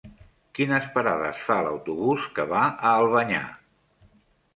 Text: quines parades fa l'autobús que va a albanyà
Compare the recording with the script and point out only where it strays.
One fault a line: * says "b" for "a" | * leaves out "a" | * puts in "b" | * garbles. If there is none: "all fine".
all fine